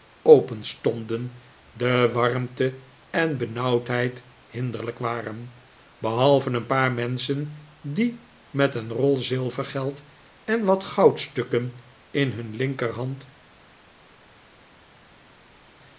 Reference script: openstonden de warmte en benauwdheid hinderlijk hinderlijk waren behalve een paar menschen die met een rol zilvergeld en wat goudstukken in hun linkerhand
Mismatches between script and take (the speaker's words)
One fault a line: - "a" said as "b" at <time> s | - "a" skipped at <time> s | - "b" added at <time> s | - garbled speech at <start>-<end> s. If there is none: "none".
- "hinderlijk" skipped at 5.0 s